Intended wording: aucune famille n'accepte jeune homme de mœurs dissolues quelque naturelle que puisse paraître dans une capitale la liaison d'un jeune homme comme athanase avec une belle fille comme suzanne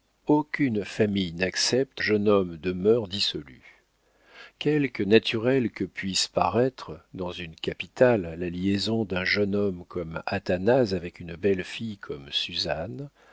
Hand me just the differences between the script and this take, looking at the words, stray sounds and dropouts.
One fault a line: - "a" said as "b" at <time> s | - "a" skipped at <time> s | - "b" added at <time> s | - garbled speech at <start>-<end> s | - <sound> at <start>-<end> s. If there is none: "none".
none